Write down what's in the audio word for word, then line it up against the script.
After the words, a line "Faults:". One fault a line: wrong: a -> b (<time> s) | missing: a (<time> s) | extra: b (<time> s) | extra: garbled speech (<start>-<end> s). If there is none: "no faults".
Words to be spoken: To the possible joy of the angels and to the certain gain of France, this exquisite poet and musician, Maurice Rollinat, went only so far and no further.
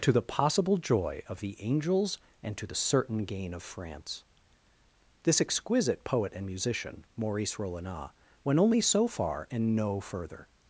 To the possible joy of the angels and to the certain gain of France, this exquisite poet and musician, Maurice Rollinat, went only so far and no further.
Faults:
no faults